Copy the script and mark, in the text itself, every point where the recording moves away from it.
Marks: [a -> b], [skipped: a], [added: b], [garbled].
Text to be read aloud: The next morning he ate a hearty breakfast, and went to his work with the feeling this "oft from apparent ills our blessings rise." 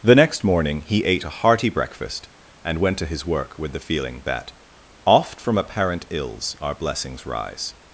The next morning he ate a hearty breakfast, and went to his work with the feeling [this -> that] "oft from apparent ills our blessings rise."